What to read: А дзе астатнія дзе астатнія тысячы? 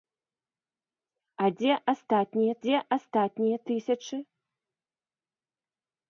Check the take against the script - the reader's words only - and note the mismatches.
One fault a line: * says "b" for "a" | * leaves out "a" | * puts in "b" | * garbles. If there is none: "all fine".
all fine